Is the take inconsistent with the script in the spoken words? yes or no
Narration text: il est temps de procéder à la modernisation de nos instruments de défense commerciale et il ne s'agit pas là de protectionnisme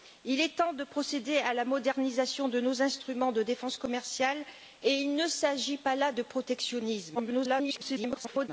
yes